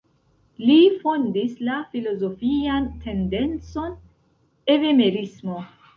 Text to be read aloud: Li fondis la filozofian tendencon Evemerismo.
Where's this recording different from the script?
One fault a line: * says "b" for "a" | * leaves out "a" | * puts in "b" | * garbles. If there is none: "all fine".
all fine